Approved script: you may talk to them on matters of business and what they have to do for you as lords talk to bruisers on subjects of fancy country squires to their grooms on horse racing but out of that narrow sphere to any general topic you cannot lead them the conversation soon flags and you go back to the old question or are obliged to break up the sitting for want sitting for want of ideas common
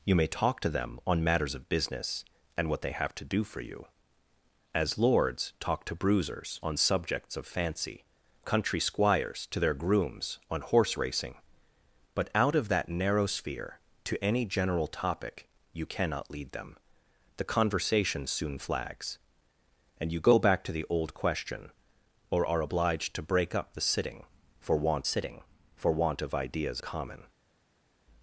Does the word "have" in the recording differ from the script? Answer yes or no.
no